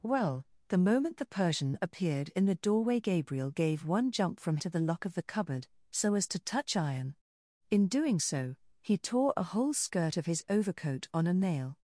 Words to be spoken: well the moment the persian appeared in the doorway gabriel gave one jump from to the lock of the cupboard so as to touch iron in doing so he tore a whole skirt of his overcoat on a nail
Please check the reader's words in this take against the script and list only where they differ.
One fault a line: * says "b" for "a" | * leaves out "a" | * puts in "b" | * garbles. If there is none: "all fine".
all fine